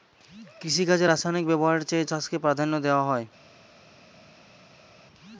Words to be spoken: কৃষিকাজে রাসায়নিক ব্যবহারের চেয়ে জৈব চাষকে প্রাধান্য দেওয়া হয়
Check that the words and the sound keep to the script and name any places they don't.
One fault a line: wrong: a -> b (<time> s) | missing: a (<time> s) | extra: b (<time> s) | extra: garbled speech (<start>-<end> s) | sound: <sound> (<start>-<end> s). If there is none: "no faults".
missing: জৈব (2.1 s)